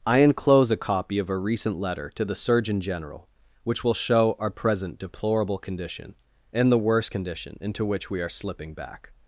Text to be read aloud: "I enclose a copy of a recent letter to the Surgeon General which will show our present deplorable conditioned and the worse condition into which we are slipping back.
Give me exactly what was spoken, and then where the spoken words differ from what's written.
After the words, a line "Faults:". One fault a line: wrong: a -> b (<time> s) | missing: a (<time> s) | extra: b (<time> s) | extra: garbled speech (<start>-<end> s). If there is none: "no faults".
"I enclose a copy of a recent letter to the Surgeon General which will show our present deplorable condition and the worse condition into which we are slipping back.
Faults:
wrong: conditioned -> condition (5.6 s)